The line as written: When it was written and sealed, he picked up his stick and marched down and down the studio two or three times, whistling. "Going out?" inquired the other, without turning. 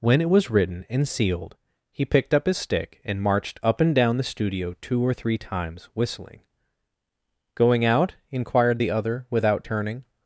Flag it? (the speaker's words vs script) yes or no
yes